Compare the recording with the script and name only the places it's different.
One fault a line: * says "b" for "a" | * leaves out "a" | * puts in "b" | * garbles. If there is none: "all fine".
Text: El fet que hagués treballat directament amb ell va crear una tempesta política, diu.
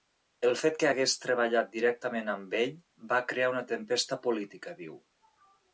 all fine